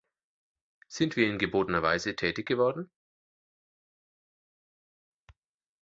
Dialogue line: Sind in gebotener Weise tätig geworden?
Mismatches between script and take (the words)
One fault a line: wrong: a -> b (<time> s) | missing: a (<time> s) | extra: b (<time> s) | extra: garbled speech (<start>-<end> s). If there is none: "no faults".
extra: wir (1.1 s)